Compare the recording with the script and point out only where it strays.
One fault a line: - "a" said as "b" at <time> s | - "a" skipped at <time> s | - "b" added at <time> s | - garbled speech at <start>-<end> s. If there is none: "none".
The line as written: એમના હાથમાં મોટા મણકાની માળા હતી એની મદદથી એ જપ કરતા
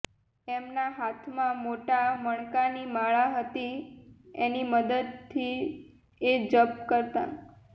none